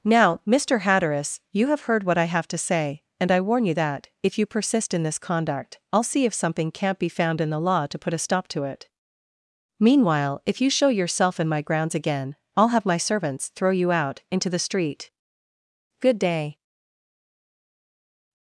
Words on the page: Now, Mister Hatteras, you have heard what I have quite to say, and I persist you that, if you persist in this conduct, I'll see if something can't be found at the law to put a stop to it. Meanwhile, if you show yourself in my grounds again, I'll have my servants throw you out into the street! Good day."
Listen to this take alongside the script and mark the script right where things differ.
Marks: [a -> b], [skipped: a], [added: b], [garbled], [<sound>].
Now, Mister Hatteras, you have heard what I have [skipped: quite] to say, and I [persist -> warn] you that, if you persist in this conduct, I'll see if something can't be found [at -> in] the law to put a stop to it. Meanwhile, if you show yourself in my grounds again, I'll have my servants throw you out into the street! Good day."